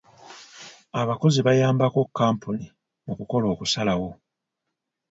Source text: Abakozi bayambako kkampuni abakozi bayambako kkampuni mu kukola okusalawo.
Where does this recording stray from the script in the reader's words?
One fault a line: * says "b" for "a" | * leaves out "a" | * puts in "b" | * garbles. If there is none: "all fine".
* leaves out "abakozi bayambako kkampuni"